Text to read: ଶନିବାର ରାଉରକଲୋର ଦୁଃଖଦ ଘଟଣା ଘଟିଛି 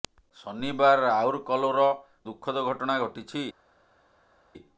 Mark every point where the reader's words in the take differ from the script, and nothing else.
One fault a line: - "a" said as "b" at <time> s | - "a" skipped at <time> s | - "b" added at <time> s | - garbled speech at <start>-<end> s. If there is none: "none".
none